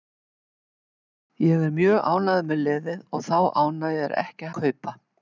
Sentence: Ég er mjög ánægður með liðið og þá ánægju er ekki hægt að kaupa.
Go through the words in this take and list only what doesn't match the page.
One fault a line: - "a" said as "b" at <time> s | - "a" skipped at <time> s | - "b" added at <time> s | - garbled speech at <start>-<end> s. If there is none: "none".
- "hægt" skipped at 4.5 s